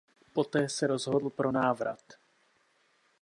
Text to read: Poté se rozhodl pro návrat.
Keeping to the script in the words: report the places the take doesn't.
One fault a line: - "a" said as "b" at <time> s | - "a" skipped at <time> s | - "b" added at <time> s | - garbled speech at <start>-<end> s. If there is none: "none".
none